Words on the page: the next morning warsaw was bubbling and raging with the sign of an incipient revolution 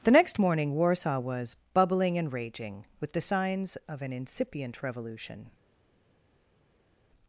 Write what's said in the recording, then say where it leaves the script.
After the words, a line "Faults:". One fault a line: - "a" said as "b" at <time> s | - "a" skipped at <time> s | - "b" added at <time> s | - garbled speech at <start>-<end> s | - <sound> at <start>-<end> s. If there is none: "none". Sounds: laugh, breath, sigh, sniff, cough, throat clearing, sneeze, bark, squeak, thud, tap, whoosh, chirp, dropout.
the next morning warsaw was bubbling and raging with the signs of an incipient revolution
Faults:
- "sign" said as "signs" at 3.2 s